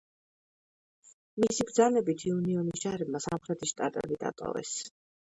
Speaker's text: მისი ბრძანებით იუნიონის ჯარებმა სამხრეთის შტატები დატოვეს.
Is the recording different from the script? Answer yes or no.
no